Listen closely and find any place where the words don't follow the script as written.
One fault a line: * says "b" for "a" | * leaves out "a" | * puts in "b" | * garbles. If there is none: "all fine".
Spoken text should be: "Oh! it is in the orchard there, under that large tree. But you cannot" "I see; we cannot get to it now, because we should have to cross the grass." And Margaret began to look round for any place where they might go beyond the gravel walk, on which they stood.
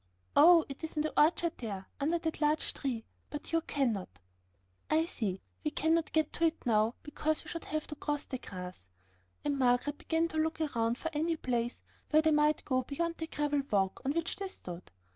all fine